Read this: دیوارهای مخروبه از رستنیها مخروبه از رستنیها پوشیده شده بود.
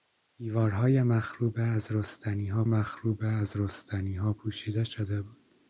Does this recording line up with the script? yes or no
yes